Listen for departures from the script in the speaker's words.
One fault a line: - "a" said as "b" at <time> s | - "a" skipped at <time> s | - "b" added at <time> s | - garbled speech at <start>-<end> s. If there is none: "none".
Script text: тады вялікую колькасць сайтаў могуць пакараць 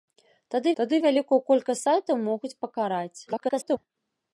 - "тады" added at 0.8 s
- garbled speech at 3.3-3.8 s